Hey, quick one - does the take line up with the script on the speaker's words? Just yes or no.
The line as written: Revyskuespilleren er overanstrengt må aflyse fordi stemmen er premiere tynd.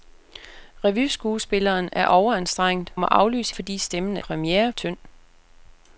yes